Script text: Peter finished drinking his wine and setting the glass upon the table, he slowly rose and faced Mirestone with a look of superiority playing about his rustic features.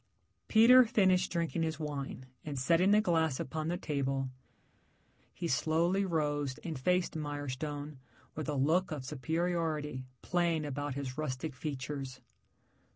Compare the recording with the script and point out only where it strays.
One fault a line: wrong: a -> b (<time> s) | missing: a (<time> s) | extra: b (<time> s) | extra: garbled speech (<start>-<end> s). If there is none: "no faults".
no faults